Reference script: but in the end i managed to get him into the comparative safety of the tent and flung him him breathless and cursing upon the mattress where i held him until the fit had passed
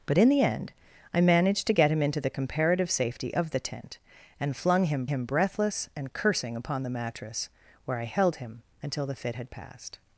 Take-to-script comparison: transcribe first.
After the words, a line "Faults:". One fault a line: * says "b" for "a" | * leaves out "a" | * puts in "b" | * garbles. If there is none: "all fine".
but in the end i managed to get him into the comparative safety of the tent and flung him him breathless and cursing upon the mattress where i held him until the fit had passed
Faults:
all fine